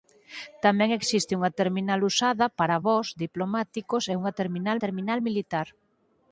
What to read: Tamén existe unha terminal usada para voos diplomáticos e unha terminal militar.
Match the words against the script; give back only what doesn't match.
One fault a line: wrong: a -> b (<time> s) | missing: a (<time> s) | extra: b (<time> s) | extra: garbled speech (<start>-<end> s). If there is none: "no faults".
extra: terminal (4.8 s)